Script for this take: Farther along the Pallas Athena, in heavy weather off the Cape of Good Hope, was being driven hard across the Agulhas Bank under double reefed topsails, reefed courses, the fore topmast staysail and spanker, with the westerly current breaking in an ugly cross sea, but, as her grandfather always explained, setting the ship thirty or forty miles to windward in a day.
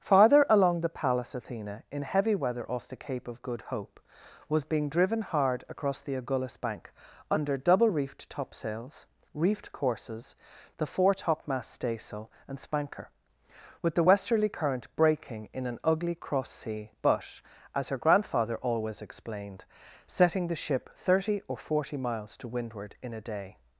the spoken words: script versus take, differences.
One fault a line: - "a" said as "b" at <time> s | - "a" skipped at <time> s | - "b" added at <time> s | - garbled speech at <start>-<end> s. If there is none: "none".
none